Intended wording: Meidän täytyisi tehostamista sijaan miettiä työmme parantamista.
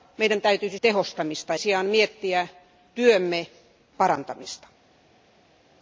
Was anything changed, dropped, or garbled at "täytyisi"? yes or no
no